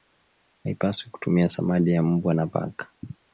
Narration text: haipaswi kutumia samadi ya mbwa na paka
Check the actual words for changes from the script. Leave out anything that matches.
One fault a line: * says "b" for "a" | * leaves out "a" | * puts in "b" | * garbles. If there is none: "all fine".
all fine